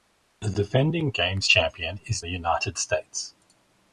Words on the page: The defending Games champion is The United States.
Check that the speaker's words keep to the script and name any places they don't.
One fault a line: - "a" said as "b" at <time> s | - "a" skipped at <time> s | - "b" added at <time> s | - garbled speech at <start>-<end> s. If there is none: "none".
none